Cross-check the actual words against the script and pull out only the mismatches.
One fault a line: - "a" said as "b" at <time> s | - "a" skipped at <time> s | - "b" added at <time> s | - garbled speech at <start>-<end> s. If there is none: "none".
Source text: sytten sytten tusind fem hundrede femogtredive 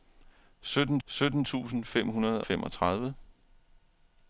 none